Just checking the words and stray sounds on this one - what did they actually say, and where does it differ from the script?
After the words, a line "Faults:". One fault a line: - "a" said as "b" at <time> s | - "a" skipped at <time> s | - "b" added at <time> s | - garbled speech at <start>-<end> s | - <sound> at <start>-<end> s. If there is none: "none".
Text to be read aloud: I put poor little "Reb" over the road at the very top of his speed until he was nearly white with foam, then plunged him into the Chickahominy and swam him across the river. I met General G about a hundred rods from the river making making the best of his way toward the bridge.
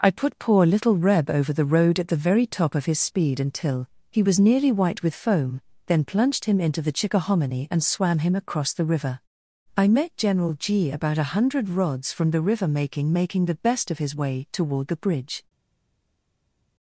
I put poor little "Reb" over the road at the very top of his speed until he was nearly white with foam, then plunged him into the Chickahominy and swam him across the river. I met General G about a hundred rods from the river making making the best of his way toward the bridge.
Faults:
none